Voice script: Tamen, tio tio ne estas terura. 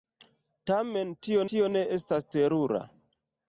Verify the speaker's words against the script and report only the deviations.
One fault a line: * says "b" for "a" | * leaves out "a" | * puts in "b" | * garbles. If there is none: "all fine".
all fine